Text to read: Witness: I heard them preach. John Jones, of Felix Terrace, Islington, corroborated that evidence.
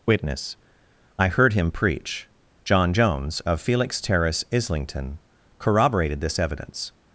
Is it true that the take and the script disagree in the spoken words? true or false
true